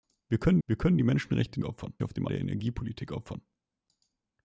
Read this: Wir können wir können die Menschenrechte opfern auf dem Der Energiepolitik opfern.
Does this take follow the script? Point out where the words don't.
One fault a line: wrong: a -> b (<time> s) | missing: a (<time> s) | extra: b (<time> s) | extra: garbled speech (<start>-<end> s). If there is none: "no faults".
no faults